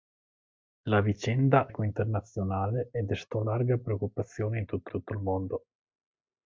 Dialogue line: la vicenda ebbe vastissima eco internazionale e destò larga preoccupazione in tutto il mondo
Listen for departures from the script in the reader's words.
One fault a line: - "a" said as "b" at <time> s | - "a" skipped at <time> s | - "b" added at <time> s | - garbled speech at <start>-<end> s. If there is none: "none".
- "ebbe vastissima" skipped at 1.7 s
- "tutto" added at 4.9 s